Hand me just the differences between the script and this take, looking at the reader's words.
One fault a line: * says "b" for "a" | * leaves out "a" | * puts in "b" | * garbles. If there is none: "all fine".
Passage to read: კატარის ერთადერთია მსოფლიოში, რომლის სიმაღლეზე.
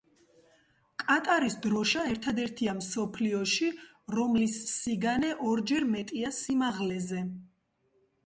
* puts in "დროშა"
* puts in "სიგანე ორჯერ მეტია"